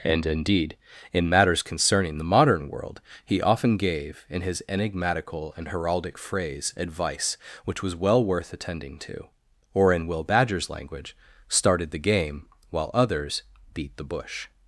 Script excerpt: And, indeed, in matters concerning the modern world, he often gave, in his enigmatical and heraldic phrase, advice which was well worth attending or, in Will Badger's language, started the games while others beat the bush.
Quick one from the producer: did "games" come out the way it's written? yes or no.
no